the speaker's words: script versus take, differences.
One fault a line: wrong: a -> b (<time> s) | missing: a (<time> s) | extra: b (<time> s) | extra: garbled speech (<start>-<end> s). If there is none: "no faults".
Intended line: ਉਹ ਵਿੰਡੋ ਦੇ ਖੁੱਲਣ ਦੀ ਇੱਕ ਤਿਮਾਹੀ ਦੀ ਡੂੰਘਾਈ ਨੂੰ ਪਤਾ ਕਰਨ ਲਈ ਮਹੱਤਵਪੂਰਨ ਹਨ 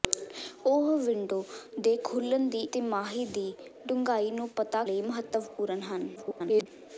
missing: ਇੱਕ (2.6 s)
missing: ਕਰਨ (4.8 s)
extra: garbled speech (6.2-6.7 s)